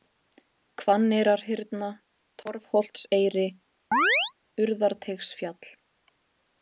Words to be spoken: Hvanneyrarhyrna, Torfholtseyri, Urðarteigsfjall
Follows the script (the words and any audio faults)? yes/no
no